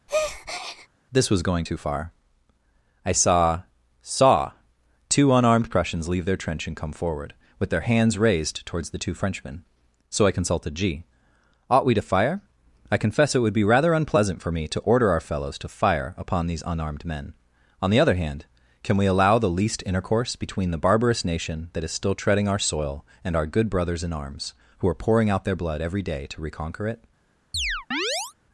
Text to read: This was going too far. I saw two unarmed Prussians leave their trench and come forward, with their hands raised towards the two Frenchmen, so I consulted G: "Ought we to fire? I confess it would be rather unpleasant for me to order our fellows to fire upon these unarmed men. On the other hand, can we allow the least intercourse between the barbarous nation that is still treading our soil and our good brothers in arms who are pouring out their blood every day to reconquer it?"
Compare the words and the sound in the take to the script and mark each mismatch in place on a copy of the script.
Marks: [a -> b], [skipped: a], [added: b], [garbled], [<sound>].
[breath] This was going too far. I saw [added: saw] two unarmed Prussians leave their trench and come forward, with their hands raised towards the two Frenchmen, so I consulted G: "Ought we to fire? I confess it would be rather unpleasant for me to order our fellows to fire upon these unarmed men. On the other hand, can we allow the least intercourse between the barbarous nation that is still treading our soil and our good brothers in arms who are pouring out their blood every day to reconquer it?" [chirp]